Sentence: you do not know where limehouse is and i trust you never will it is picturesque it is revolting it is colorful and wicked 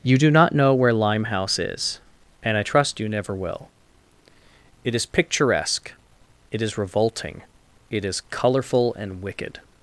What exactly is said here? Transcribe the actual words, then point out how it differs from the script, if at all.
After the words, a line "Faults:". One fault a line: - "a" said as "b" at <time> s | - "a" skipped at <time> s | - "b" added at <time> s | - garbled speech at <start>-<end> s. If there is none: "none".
you do not know where limehouse is and i trust you never will it is picturesque it is revolting it is colorful and wicked
Faults:
none